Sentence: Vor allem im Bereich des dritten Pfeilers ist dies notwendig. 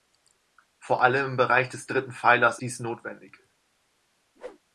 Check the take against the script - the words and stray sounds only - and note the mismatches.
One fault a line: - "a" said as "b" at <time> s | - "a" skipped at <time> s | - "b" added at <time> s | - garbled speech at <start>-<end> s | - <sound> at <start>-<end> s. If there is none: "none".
- "ist" skipped at 2.6 s
- whoosh at 4.4-4.6 s